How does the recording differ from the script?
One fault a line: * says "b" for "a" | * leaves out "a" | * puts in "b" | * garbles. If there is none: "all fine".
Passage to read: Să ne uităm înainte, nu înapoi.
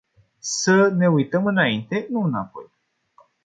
all fine